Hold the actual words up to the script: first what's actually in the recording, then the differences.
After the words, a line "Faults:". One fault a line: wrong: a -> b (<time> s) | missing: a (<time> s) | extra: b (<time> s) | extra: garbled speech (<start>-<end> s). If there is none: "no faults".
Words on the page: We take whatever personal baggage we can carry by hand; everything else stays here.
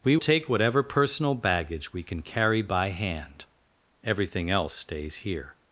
We take whatever personal baggage we can carry by hand; everything else stays here.
Faults:
no faults